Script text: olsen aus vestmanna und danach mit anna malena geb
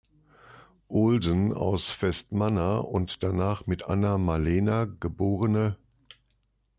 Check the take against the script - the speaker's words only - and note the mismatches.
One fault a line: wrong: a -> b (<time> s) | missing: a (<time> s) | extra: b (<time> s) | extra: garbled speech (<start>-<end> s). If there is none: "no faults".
no faults